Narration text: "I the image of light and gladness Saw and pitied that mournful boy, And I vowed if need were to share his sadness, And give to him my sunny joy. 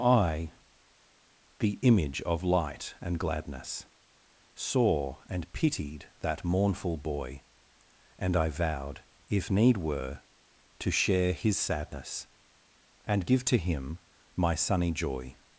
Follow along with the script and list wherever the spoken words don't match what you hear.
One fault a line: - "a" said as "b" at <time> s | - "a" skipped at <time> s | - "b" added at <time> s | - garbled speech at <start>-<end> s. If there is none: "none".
none